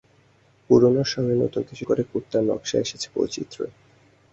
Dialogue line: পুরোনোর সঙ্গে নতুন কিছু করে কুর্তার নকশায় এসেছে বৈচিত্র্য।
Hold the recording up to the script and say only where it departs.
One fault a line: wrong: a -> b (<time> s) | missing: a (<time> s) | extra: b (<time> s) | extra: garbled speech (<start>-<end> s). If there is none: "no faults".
no faults